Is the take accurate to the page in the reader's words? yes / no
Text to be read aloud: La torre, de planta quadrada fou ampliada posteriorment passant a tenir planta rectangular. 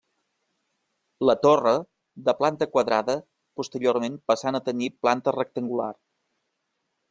no